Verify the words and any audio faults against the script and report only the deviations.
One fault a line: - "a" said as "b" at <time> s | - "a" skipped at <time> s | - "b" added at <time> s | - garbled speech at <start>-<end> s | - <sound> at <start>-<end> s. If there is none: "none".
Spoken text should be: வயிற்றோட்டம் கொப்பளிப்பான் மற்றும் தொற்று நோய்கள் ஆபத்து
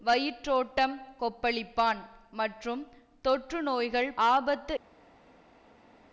none